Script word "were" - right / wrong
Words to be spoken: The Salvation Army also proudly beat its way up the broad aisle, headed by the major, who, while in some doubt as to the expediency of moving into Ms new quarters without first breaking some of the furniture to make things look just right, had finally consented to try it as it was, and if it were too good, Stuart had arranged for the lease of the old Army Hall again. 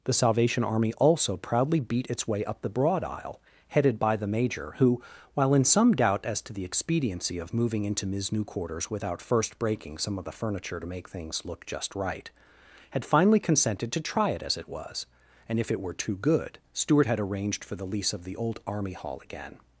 right